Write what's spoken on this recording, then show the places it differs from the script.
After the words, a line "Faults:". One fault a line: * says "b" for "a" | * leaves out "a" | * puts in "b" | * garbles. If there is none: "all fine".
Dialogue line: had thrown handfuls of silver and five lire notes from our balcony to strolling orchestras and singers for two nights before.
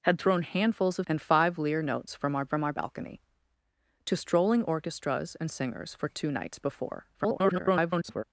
had thrown handfuls of and five lire notes from our from our balcony to strolling orchestras and singers for two nights before. [garbled]
Faults:
* leaves out "silver"
* puts in "from our"
* garbles